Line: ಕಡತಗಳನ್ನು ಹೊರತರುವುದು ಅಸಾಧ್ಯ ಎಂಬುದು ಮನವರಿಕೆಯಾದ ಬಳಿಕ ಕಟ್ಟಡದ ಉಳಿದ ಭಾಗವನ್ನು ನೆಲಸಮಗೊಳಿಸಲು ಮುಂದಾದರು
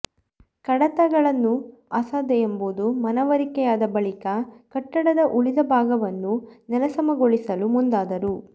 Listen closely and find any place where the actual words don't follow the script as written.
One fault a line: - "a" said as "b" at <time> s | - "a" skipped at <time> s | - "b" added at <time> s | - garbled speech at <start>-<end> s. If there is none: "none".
- "ಹೊರತರುವುದು" skipped at 1.5 s